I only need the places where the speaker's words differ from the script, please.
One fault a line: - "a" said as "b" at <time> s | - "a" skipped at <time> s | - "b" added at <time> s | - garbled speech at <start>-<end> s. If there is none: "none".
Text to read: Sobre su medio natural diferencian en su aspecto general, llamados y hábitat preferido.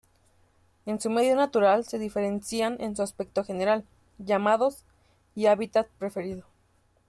- "Sobre" said as "En" at 0.9 s
- "se" added at 1.9 s